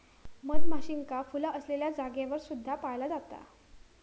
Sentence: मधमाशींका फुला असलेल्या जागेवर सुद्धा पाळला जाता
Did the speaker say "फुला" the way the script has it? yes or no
yes